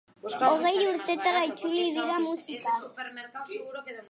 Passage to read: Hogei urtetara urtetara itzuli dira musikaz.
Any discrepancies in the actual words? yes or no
yes